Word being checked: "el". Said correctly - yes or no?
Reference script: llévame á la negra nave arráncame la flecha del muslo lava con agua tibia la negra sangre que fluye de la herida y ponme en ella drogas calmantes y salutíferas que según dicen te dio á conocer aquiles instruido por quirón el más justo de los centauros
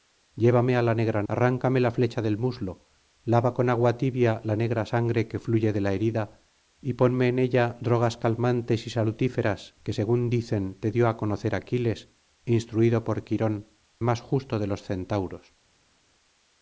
no